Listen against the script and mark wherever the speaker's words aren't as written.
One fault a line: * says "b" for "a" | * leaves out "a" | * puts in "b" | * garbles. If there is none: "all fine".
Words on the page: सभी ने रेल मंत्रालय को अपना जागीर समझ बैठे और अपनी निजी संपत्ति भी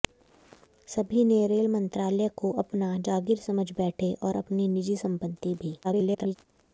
* garbles